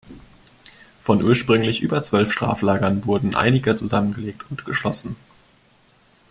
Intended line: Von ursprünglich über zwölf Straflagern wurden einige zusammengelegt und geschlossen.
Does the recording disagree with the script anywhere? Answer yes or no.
no